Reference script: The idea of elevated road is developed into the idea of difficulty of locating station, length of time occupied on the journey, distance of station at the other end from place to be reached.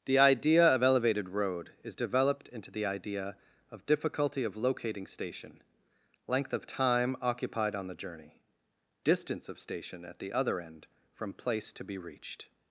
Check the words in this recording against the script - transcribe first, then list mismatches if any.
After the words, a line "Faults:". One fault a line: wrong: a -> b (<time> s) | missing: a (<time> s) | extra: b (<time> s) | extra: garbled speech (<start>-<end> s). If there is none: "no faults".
The idea of elevated road is developed into the idea of difficulty of locating station, length of time occupied on the journey, distance of station at the other end from place to be reached.
Faults:
no faults